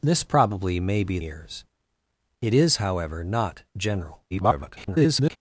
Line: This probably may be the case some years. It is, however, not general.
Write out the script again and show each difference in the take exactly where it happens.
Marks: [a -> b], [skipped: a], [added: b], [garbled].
This probably may be [skipped: the case some] years. It is, however, not general. [garbled]